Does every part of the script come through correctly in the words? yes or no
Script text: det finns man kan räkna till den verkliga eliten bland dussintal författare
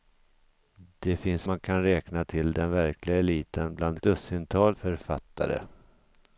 yes